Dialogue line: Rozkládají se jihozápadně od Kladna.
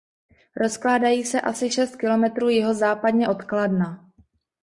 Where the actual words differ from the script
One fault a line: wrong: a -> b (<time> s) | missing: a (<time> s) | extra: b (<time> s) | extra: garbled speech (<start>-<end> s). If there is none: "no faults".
extra: asi šest kilometrů (1.4 s)